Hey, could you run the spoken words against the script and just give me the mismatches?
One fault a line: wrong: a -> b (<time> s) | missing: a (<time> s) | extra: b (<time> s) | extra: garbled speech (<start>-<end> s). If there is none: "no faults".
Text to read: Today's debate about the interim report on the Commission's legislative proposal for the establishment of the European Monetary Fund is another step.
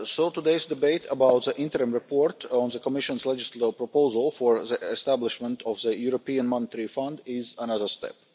no faults